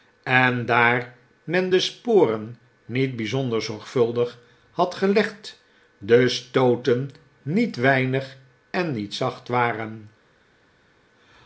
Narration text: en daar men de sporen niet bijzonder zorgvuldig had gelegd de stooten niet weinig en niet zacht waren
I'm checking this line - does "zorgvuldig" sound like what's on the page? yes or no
yes